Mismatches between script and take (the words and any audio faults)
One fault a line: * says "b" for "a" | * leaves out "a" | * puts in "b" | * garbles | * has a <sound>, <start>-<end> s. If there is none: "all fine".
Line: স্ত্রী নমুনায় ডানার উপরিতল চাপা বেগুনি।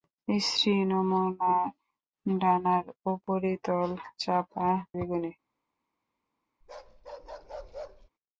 * has a dropout, 3.2-3.3 s
* has a bark, 6.6-8.1 s